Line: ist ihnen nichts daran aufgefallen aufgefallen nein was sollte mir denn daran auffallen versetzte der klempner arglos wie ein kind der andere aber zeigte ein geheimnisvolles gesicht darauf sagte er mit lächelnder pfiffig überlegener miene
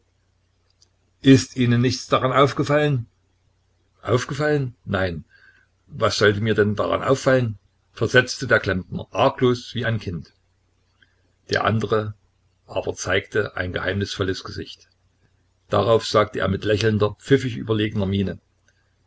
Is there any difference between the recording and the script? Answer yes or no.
no